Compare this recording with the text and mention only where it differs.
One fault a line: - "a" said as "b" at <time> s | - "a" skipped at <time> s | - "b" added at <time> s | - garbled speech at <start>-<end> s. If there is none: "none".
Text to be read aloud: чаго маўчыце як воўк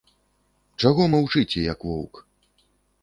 none